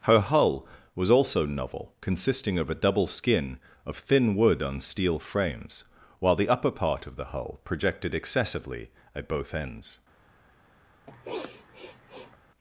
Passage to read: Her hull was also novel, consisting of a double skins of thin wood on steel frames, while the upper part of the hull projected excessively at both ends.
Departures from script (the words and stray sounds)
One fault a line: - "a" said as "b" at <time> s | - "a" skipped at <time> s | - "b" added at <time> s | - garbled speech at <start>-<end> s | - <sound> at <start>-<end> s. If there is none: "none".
- "skins" said as "skin" at 3.0 s
- sniff at 11.1-12.4 s